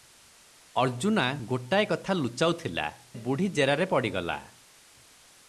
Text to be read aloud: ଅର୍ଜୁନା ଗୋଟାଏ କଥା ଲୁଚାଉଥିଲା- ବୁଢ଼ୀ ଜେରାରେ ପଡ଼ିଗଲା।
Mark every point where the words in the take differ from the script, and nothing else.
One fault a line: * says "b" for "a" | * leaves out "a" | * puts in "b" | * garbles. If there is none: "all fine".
all fine